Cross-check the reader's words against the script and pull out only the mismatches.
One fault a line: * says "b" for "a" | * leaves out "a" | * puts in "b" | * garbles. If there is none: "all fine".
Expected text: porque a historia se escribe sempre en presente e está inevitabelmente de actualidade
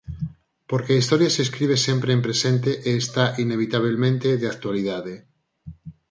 all fine